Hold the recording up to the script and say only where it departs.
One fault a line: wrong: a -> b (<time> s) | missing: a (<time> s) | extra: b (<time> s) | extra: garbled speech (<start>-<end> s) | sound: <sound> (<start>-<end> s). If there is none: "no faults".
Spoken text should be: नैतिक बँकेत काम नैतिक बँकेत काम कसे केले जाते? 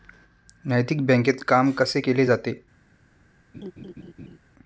missing: नैतिक बँकेत काम (1.7 s)
sound: laugh (3.5-4.4 s)